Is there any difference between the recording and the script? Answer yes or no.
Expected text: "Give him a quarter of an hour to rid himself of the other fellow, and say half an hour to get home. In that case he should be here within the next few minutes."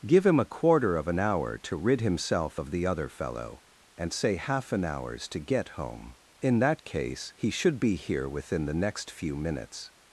yes